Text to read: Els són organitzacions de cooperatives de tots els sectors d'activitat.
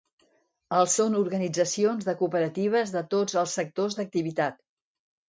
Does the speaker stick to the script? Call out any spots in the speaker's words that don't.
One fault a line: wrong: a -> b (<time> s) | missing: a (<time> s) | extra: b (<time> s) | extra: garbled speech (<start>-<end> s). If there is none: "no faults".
no faults